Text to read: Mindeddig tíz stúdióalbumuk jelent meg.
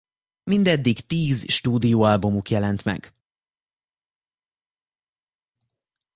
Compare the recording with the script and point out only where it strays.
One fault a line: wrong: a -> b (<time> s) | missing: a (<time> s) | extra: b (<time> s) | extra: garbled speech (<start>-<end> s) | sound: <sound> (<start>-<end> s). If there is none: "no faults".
no faults